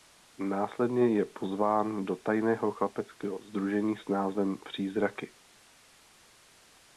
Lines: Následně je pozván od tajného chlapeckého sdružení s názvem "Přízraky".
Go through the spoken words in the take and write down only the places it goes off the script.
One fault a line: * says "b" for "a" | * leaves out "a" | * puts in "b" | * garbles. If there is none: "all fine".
* says "do" for "od"